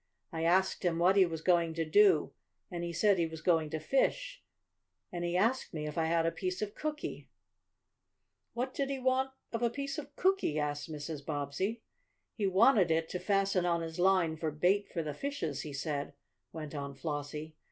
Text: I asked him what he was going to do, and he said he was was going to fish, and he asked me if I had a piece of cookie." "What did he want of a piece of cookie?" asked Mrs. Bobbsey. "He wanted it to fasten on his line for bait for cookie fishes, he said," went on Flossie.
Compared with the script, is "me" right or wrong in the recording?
right